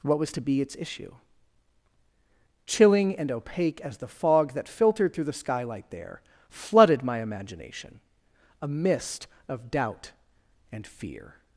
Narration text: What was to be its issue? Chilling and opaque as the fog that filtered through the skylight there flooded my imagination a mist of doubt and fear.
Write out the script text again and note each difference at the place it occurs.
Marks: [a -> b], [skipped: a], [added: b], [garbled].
What was to be its issue? Chilling and opaque as the fog that filtered through the skylight there flooded my imagination a mist of doubt and fear.